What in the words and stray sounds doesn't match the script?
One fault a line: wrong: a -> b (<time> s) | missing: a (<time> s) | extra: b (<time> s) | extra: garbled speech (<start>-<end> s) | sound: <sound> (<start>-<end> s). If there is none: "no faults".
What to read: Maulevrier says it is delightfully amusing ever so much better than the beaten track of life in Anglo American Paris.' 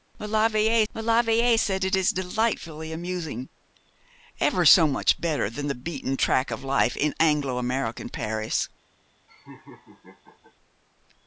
extra: maulevrier (0.9 s)
sound: laugh (9.3-10.5 s)